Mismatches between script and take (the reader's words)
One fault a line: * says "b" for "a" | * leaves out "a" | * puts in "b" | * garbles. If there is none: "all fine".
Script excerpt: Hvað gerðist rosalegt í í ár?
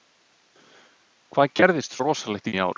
all fine